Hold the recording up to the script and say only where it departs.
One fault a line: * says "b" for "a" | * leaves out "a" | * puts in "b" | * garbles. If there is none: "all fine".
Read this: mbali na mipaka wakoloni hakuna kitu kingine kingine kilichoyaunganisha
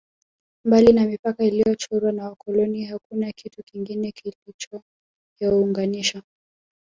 * puts in "iliyochorwa na"
* leaves out "kingine"